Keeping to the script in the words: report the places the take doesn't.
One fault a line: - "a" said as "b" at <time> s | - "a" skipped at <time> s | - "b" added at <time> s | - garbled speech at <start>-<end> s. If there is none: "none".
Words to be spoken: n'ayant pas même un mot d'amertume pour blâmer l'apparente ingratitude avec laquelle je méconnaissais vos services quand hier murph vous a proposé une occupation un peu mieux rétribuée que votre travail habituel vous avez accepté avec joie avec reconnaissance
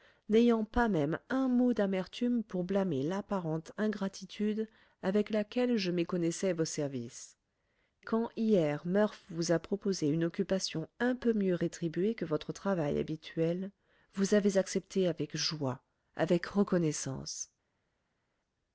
none